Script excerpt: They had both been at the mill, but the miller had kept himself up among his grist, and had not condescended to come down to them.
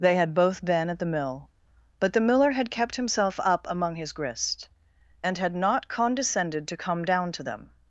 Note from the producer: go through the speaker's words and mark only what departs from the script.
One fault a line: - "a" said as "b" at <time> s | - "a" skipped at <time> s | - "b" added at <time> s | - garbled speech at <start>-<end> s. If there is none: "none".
none